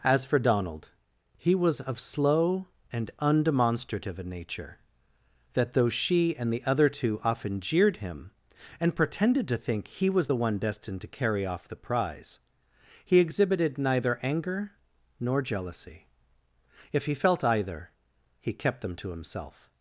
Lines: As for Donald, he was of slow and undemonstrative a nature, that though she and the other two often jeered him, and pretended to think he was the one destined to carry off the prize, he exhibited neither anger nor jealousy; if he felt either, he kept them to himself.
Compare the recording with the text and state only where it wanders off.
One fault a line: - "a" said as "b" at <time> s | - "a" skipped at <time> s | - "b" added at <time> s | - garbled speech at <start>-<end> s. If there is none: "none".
none